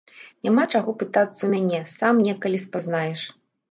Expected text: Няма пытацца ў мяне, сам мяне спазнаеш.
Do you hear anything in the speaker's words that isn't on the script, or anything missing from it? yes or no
yes